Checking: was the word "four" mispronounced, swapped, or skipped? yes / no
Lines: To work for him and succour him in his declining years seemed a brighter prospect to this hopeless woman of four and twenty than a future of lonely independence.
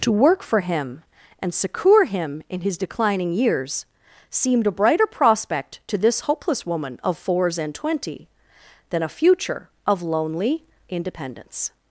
yes